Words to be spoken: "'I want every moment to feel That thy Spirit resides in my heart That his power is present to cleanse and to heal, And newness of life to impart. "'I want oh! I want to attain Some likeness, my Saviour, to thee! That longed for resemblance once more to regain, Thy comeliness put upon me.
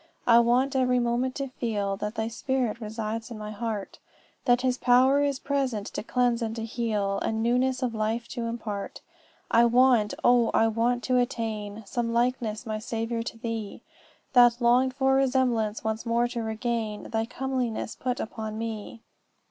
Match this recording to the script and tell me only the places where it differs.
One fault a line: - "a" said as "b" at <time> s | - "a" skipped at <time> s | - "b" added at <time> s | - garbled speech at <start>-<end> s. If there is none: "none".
none